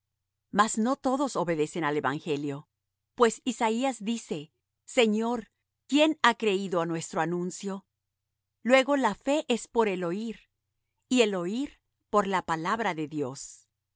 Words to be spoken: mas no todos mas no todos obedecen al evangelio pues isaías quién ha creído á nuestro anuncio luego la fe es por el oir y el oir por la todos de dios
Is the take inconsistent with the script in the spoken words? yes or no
yes